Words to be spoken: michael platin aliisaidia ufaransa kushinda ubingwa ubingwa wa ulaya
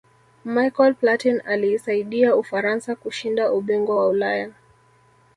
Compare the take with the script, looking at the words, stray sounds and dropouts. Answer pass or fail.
fail